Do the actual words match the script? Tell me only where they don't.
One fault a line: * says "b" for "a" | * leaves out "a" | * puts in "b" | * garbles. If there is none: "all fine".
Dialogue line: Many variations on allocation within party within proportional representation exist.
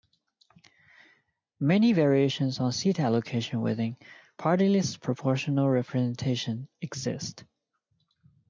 * puts in "seat"
* says "list" for "within"